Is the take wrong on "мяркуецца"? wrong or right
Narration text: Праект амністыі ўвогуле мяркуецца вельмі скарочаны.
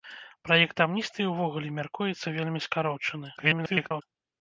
right